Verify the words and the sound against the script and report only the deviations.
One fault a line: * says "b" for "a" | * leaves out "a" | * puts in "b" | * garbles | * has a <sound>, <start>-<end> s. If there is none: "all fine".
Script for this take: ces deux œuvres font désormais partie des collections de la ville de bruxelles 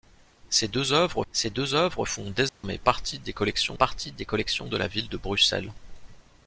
* puts in "ces deux œuvres"
* has a dropout, 2.5-2.6 s
* puts in "partie des collections"